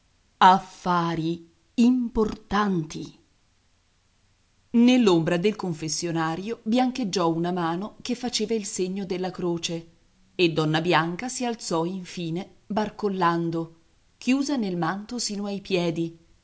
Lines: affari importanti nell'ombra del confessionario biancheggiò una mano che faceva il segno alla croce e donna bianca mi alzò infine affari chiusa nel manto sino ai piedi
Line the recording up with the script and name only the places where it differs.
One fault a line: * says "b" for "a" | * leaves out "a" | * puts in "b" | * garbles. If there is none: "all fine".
* says "della" for "alla"
* says "si" for "mi"
* says "barcollando" for "affari"